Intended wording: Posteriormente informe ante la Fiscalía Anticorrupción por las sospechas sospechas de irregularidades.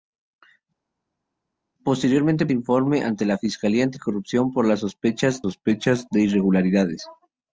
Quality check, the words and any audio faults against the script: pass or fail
pass